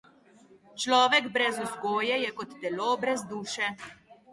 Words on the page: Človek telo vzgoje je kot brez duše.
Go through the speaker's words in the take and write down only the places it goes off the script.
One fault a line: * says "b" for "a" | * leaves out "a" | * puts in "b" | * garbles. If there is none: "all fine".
* says "brez" for "telo"
* puts in "telo"